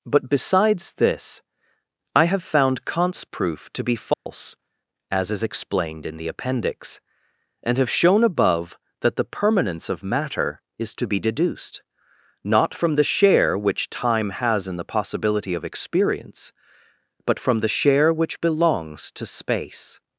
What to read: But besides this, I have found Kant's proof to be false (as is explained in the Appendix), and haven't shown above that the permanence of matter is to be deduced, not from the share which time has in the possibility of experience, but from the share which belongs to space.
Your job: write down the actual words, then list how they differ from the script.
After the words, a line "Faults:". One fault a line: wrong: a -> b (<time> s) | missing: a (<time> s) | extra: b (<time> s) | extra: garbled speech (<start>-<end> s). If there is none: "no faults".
But besides this, I have found Kant's proof to be false (as is explained in the Appendix), and have shown above that the permanence of matter is to be deduced, not from the share which time has in the possibility of experience, but from the share which belongs to space.
Faults:
wrong: haven't -> have (7.8 s)